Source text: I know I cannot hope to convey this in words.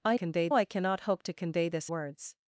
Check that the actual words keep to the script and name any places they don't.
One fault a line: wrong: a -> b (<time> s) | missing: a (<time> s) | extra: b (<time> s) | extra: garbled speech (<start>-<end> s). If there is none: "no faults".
wrong: know -> convey (0.1 s)
missing: in (1.9 s)